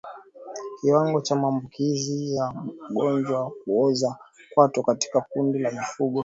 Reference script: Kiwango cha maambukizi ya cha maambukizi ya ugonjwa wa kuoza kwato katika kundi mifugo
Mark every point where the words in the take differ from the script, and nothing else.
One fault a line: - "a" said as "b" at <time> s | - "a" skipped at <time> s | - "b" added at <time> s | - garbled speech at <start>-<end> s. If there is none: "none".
- "cha maambukizi ya" skipped at 2.5 s
- "la" added at 5.6 s